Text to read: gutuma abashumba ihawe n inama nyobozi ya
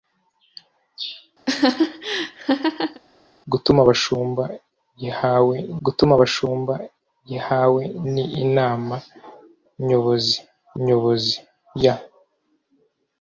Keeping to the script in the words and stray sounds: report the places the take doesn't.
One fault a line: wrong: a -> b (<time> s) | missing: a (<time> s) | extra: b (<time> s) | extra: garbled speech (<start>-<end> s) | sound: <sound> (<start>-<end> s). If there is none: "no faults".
sound: laugh (1.5-3.0 s)
extra: gutuma abashumba ihawe (5.9 s)
extra: nyobozi (10.8 s)